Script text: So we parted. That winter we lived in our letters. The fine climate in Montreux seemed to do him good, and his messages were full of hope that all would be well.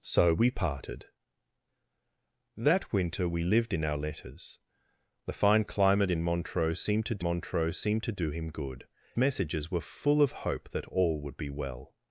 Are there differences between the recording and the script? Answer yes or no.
yes